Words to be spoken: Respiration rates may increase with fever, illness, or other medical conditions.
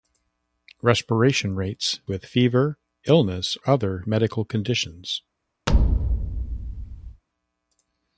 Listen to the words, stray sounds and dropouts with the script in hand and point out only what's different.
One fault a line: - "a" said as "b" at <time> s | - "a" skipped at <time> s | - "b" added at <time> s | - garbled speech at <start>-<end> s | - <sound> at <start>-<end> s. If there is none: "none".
- "may increase" skipped at 2.0 s
- "or" skipped at 3.6 s
- thud at 5.7-7.2 s